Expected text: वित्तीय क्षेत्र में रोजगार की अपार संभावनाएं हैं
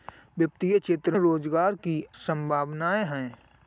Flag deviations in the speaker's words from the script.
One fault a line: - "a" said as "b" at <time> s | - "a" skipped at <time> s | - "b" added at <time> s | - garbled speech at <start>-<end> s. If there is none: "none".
- "में" skipped at 1.2 s
- "अपार" skipped at 2.0 s